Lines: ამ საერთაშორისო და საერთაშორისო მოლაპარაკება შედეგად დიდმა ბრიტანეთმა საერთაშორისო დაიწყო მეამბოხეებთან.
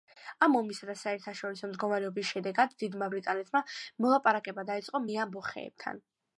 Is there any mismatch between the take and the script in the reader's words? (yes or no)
yes